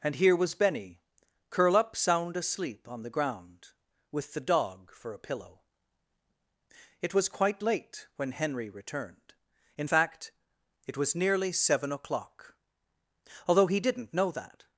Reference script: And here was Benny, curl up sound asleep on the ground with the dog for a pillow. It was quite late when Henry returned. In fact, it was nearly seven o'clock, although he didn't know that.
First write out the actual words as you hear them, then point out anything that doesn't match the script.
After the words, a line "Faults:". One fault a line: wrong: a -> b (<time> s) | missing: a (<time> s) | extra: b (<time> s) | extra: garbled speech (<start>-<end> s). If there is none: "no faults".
And here was Benny, curl up sound asleep on the ground with the dog for a pillow. It was quite late when Henry returned. In fact, it was nearly seven o'clock, although he didn't know that.
Faults:
no faults